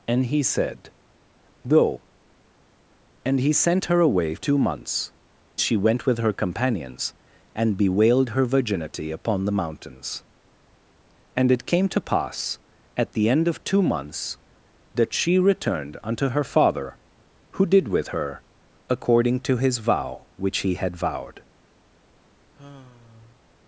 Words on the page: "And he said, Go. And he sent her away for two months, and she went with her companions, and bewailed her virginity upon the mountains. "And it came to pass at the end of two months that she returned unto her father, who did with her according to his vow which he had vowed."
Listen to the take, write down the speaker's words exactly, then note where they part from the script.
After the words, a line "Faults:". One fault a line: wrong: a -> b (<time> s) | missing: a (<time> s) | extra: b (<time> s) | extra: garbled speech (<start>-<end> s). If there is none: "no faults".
"And he said, Go. And he sent her away two months, she went with her companions, and bewailed her virginity upon the mountains. "And it came to pass at the end of two months that she returned unto her father, who did with her according to his vow which he had vowed."
Faults:
missing: for (4.3 s)
missing: and (5.1 s)